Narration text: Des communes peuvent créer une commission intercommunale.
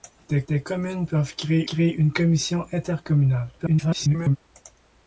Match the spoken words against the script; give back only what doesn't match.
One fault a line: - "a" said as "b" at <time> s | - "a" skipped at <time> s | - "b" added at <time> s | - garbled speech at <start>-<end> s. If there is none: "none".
- "des" added at 0.5 s
- "créer" added at 1.7 s
- garbled speech at 3.6-4.4 s